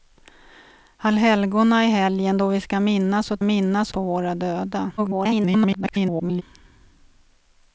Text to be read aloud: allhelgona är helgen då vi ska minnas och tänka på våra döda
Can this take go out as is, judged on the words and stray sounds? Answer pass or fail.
fail